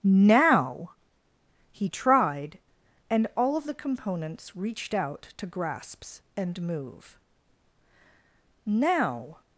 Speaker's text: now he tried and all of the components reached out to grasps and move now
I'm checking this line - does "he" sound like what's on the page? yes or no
yes